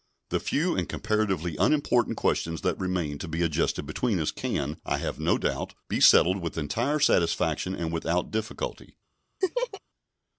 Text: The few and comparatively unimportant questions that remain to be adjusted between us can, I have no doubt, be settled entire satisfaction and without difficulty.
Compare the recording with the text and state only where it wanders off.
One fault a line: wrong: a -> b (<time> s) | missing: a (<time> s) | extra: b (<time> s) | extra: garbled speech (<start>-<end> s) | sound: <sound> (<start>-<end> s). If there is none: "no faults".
extra: with (6.4 s)
sound: laugh (9.4-9.8 s)